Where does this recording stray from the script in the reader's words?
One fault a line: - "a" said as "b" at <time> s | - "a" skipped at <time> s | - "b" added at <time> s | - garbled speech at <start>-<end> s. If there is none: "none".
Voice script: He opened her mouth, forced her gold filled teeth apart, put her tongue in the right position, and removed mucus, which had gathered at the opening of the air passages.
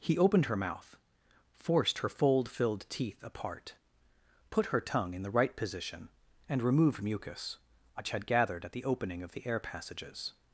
- "gold" said as "fold" at 2.1 s